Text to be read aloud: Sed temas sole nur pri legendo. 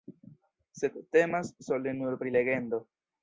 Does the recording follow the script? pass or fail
pass